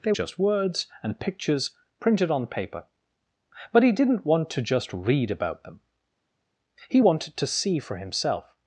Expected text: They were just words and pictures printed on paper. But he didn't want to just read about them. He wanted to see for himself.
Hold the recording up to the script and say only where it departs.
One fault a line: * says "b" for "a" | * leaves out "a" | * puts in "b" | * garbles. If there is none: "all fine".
* leaves out "were"